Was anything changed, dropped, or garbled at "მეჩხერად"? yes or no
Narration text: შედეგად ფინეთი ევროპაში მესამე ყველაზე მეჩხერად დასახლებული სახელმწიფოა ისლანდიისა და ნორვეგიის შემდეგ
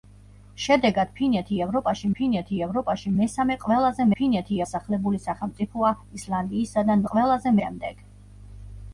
yes